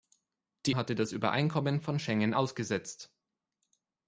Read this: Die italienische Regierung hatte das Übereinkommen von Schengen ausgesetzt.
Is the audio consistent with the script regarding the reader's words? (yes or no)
no